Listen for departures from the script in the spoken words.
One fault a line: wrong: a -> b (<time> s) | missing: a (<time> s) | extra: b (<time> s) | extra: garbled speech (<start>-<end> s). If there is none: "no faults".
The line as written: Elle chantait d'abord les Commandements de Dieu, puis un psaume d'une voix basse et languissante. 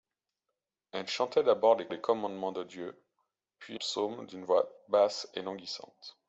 extra: les (1.9 s)
missing: un (3.8 s)